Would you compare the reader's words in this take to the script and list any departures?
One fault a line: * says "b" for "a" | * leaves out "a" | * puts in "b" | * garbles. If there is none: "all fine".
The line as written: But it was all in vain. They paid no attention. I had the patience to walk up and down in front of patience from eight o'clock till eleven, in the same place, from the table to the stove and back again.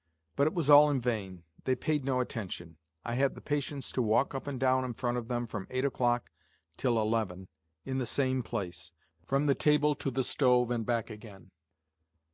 * says "them" for "patience"